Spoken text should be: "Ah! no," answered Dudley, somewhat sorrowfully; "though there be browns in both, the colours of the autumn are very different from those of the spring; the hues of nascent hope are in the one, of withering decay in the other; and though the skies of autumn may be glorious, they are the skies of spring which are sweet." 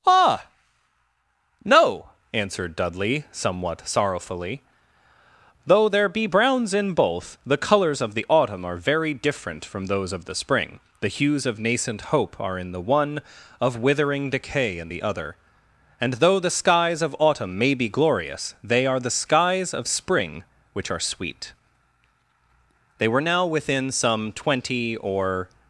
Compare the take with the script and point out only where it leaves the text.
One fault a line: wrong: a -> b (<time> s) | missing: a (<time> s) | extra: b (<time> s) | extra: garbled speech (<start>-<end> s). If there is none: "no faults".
extra: They were now within some twenty or (23.0 s)